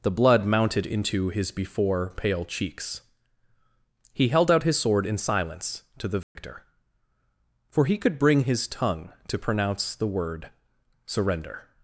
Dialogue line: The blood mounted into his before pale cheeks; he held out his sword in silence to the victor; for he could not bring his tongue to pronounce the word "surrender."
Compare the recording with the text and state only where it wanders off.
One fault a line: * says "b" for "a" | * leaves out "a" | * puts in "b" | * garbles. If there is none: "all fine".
* leaves out "not"